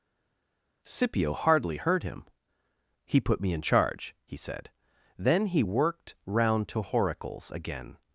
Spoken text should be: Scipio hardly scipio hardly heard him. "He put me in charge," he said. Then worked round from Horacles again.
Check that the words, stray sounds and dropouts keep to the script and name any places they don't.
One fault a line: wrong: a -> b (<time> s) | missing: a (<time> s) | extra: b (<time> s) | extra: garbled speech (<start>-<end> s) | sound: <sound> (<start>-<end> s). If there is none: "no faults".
missing: scipio hardly (1.8 s)
extra: he (5.5 s)
wrong: from -> to (6.7 s)